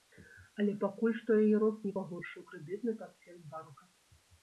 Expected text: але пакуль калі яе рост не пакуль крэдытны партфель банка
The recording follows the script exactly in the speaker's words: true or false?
false